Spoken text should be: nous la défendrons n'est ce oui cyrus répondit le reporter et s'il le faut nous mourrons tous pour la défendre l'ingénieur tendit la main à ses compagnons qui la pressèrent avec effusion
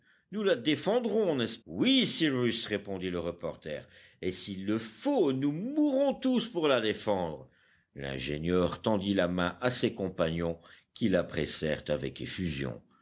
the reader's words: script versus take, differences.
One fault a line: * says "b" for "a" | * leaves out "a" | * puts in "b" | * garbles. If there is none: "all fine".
all fine